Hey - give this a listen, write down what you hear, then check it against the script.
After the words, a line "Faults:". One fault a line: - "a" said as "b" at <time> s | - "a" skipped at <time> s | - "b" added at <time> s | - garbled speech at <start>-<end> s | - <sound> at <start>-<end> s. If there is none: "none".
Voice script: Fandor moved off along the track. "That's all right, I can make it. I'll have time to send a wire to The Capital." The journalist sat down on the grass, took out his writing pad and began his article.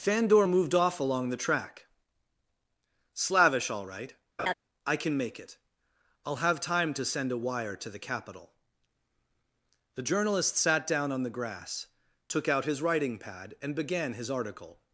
Fandor moved off along the track. "Slavish all right, I can make it. I'll have time to send a wire to The Capital." The journalist sat down on the grass, took out his writing pad and began his article.
Faults:
- "That's" said as "Slavish" at 3.1 s
- laugh at 4.4-4.5 s